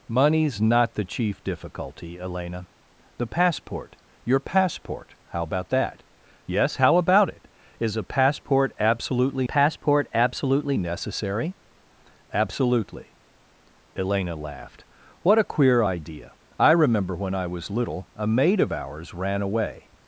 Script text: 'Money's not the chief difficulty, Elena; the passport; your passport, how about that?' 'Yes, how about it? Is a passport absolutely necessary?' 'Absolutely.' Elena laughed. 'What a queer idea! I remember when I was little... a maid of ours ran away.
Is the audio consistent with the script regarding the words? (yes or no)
no